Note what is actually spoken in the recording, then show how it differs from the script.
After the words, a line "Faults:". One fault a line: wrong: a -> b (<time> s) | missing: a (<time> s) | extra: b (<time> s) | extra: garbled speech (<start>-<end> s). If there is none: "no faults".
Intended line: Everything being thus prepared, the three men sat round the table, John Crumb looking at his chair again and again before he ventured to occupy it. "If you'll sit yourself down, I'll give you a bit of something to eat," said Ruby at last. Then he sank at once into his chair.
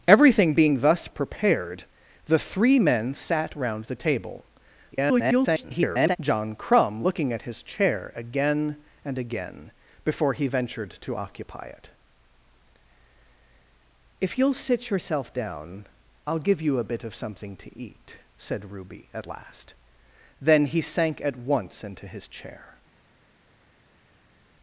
Everything being thus prepared, the three men sat round the table, [garbled] John Crumb looking at his chair again and again before he ventured to occupy it. "If you'll sit yourself down, I'll give you a bit of something to eat," said Ruby at last. Then he sank at once into his chair.
Faults:
extra: garbled speech (4.9-6.2 s)